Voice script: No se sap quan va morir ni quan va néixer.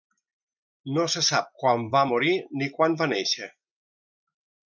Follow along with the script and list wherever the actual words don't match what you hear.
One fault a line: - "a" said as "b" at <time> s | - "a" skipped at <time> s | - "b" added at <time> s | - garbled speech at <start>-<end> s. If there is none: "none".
none